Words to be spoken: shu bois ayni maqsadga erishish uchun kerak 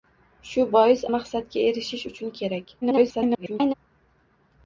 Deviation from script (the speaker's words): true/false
true